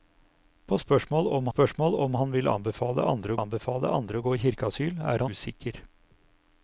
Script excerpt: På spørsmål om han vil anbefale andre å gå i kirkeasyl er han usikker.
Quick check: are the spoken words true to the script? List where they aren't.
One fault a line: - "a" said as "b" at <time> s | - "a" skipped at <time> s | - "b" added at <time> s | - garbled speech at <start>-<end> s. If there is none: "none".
- "spørsmål om" added at 1.5 s
- "anbefale andre" added at 3.4 s
- "han" skipped at 5.3 s